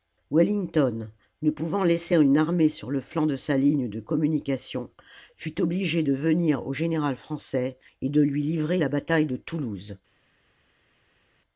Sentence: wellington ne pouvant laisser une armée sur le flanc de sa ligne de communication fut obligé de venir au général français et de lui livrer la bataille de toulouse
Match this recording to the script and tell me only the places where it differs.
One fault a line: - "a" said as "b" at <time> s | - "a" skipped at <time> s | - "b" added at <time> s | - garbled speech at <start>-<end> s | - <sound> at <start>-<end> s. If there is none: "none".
none